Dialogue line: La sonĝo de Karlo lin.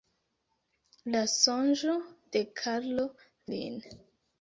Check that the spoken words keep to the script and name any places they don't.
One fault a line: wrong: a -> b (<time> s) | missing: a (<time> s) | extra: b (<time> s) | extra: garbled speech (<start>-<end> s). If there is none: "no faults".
no faults